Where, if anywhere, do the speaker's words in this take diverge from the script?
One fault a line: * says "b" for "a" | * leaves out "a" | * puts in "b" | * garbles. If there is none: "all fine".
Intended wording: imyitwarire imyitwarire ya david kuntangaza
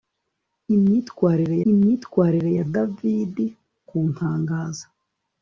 all fine